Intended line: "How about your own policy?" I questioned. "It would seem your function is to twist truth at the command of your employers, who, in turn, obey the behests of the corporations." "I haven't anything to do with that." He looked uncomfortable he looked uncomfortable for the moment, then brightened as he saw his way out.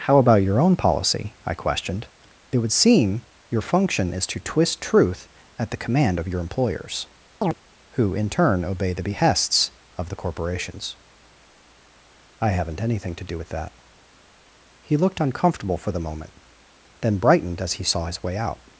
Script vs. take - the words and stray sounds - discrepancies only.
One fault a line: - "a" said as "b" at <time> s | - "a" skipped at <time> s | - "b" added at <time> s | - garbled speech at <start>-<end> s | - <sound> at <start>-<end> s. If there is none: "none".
- chirp at 7.4-7.5 s
- "he looked uncomfortable" skipped at 15.8 s